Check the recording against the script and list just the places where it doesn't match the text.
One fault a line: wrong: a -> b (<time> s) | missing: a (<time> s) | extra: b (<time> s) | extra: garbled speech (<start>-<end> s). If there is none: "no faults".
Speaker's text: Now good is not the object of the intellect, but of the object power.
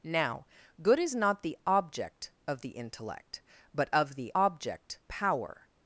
no faults